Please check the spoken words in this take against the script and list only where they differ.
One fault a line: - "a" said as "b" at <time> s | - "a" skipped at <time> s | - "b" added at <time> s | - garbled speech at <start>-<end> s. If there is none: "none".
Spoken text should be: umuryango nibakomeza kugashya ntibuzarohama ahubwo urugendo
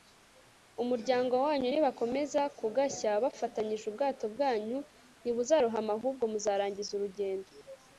- "wanyu" added at 1.4 s
- "bafatanyije ubwato bwanyu" added at 3.2 s
- "muzarangiza" added at 6.3 s